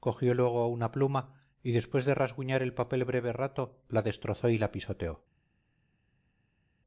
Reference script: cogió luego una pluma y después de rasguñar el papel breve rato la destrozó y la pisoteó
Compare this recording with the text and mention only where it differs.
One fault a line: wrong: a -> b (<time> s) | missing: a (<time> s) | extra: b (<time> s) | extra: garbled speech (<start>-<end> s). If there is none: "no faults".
no faults